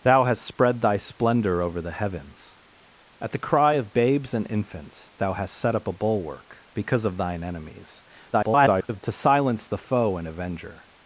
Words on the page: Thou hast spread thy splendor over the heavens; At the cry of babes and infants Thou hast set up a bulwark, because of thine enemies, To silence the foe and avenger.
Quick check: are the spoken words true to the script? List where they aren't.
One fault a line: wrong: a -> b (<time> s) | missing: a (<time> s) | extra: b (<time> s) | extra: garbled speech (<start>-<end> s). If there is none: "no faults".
extra: garbled speech (8.3-9.0 s)